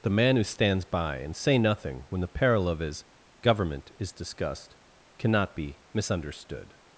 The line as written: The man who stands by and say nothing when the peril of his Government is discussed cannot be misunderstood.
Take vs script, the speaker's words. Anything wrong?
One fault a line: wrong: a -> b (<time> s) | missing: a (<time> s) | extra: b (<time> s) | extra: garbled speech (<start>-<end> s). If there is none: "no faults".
no faults